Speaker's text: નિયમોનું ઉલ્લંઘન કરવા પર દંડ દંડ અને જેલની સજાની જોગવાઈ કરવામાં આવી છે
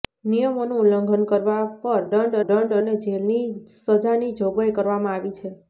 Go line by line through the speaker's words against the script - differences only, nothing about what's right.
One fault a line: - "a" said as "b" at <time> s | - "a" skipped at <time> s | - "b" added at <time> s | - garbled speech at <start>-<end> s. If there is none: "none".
none